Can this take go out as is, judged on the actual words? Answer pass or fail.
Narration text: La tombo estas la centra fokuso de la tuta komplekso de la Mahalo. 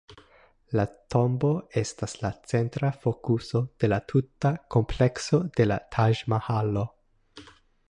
fail